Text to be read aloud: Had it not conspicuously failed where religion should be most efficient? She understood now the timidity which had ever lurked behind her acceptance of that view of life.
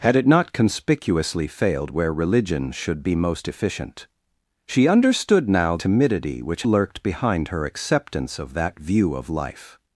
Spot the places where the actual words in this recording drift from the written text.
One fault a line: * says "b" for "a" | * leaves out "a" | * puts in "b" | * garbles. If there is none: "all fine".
* leaves out "the"
* leaves out "had ever"